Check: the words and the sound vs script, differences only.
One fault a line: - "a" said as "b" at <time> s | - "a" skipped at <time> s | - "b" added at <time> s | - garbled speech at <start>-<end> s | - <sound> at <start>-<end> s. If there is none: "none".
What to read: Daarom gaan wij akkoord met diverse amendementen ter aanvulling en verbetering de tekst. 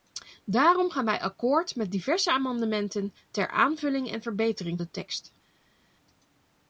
none